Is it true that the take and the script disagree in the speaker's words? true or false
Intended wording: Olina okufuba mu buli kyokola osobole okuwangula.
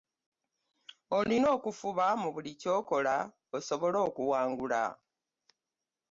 false